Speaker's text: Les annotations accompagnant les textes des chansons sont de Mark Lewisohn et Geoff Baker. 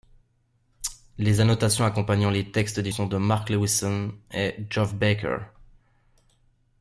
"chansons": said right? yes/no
no